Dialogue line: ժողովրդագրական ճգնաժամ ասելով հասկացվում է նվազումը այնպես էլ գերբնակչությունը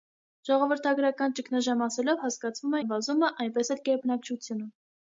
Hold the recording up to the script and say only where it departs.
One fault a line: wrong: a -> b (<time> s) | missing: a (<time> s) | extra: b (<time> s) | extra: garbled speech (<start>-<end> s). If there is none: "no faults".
no faults